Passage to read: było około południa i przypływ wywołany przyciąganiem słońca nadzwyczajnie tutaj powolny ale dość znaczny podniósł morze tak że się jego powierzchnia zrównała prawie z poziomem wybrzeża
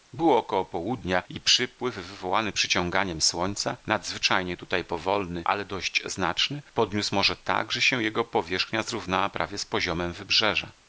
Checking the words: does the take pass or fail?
pass